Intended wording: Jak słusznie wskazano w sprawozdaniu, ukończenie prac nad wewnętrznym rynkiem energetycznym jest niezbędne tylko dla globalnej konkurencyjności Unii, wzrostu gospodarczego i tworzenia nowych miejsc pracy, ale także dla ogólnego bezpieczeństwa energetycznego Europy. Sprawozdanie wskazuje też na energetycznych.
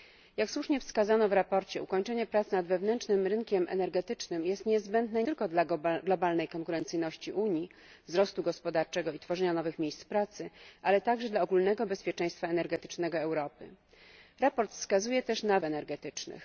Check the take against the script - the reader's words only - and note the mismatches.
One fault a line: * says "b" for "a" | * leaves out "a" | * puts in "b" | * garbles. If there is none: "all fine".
all fine